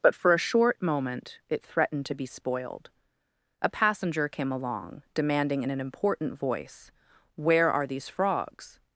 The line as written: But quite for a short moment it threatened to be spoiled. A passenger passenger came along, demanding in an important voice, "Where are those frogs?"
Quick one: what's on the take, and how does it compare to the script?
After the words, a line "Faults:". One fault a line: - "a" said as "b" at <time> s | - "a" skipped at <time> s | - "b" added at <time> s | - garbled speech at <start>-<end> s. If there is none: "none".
But for a short moment it threatened to be spoiled. A passenger came along, demanding in an important voice, "Where are these frogs?"
Faults:
- "quite" skipped at 0.1 s
- "passenger" skipped at 4.3 s
- "those" said as "these" at 7.8 s